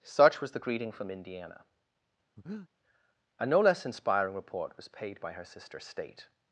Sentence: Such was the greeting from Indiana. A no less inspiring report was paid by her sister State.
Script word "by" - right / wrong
right